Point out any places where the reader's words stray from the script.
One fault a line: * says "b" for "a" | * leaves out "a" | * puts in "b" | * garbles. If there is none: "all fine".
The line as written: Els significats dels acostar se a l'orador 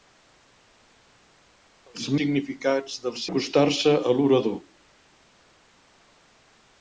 all fine